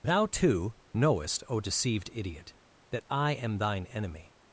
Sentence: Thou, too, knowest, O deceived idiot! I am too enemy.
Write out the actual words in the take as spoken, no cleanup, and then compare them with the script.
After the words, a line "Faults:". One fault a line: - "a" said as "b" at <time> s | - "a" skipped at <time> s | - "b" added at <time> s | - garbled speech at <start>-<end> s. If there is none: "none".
Thou, too, knowest, O deceived idiot! that I am thine enemy.
Faults:
- "that" added at 2.9 s
- "too" said as "thine" at 3.6 s